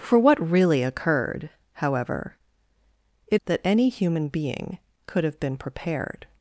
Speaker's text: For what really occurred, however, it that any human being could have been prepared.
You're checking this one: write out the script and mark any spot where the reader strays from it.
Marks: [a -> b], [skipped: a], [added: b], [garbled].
For what really occurred, however, it that any human being could have been prepared.